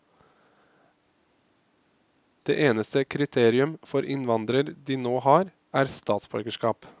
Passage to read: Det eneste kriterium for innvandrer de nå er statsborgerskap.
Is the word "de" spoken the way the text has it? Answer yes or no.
yes